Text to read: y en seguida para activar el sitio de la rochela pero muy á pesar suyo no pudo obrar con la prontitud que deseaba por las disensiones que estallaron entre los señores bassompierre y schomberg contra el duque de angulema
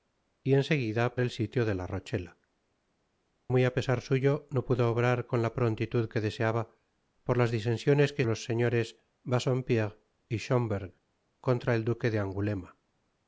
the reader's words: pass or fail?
fail